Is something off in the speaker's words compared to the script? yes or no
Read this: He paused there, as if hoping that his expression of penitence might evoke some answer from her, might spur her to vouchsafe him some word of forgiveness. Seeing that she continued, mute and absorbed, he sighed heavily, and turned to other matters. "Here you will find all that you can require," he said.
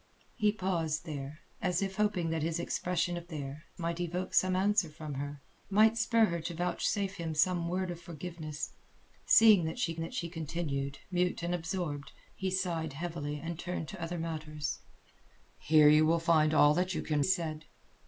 yes